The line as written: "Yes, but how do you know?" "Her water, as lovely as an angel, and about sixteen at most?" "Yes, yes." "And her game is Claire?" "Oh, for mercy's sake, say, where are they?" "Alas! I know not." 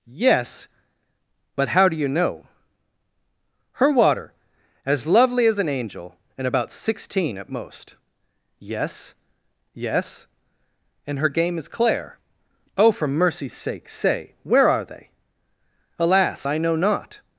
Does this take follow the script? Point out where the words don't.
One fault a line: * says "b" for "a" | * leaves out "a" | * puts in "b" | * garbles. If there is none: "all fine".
all fine